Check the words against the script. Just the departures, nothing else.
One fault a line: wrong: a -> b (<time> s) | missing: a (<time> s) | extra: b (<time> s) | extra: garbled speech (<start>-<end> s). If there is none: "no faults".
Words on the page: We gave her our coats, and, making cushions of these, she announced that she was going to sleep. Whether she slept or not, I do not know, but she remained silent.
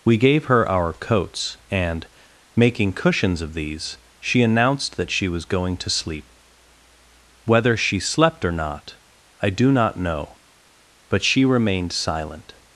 no faults